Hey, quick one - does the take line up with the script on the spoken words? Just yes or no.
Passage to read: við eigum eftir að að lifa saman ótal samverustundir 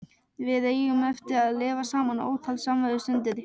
no